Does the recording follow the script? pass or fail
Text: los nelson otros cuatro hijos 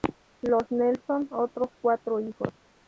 pass